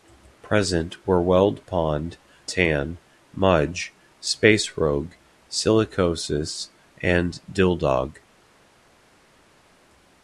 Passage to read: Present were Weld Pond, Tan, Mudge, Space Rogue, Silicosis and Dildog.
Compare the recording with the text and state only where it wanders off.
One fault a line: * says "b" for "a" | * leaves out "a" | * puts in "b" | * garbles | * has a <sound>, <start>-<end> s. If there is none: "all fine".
all fine